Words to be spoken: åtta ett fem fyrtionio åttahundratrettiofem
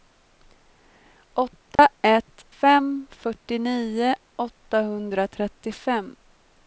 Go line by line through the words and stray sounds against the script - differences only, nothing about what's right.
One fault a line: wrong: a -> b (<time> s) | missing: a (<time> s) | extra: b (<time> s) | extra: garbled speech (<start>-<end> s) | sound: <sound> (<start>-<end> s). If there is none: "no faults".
sound: dropout (1.8-1.8 s)